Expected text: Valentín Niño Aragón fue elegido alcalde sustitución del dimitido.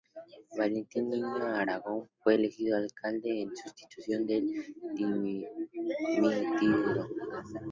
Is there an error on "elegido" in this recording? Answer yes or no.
no